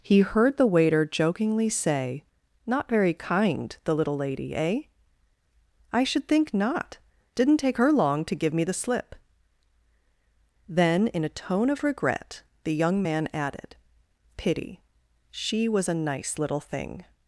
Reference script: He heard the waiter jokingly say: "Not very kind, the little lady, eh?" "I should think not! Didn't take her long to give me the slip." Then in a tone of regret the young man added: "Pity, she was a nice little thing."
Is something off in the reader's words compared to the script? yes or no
no